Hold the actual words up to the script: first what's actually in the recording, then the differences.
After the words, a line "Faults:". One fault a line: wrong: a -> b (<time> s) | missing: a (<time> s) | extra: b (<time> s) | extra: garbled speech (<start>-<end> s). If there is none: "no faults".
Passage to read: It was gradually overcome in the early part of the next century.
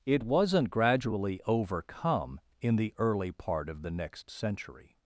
It wasn't gradually overcome in the early part of the next century.
Faults:
wrong: was -> wasn't (0.2 s)